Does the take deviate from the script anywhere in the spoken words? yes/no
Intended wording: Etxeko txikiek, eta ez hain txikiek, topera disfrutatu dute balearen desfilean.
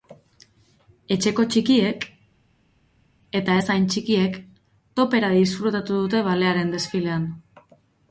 no